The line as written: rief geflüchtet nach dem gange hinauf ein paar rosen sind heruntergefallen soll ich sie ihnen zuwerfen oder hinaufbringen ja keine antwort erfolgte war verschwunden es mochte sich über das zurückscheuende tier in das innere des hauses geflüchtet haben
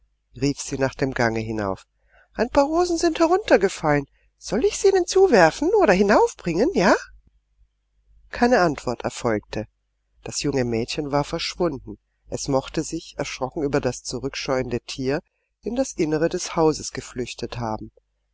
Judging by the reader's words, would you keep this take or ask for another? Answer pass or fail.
fail